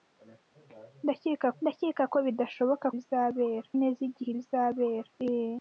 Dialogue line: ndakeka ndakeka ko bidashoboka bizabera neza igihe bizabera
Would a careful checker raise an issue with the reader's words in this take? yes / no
no